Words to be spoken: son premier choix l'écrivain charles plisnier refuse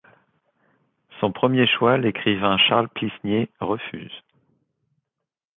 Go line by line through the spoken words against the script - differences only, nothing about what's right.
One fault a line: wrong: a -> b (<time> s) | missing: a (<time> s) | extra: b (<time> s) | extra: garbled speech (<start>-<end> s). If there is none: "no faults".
no faults